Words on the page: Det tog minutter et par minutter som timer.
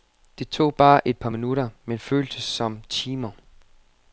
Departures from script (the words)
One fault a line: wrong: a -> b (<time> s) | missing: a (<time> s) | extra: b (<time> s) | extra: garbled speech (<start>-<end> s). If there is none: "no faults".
wrong: minutter -> bare (0.8 s)
extra: men føltes (1.8 s)